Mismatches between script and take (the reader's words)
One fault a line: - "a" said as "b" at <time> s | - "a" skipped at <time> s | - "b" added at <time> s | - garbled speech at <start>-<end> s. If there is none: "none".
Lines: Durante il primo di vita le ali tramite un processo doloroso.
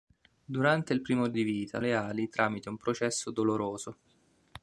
none